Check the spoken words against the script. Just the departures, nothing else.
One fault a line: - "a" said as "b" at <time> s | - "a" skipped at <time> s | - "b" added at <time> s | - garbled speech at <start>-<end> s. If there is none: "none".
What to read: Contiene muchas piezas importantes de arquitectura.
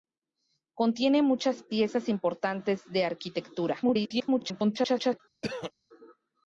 - garbled speech at 3.8-5.2 s